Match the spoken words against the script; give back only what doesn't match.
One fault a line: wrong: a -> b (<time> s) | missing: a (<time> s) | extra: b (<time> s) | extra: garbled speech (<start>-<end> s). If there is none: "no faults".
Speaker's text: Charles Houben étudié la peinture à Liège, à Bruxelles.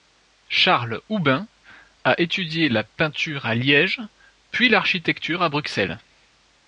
extra: a (2.0 s)
extra: puis l'architecture (4.5 s)